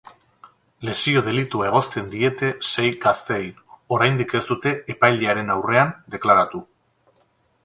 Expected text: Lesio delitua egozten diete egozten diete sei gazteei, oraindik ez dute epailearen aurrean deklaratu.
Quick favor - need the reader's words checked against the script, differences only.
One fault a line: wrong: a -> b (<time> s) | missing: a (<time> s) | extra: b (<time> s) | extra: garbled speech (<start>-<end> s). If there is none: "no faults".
missing: egozten diete (2.5 s)